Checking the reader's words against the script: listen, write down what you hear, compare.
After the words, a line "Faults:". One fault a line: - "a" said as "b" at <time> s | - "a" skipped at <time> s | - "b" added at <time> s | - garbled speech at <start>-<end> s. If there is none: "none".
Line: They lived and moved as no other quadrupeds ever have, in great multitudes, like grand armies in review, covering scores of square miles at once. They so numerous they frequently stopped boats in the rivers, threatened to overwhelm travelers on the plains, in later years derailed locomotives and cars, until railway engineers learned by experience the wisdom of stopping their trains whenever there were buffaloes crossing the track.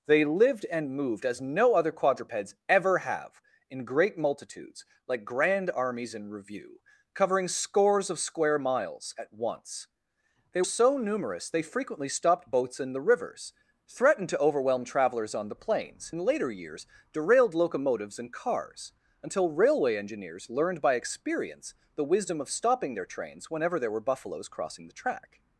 They lived and moved as no other quadrupeds ever have, in great multitudes, like grand armies in review, covering scores of square miles at once. They so numerous they frequently stopped boats in the rivers, threatened to overwhelm travelers on the plains, in later years derailed locomotives and cars, until railway engineers learned by experience the wisdom of stopping their trains whenever there were buffaloes crossing the track.
Faults:
none